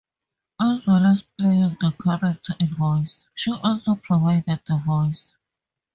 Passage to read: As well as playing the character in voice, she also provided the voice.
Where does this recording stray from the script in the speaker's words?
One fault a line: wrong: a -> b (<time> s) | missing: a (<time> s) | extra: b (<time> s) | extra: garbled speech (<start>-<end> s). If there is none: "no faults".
no faults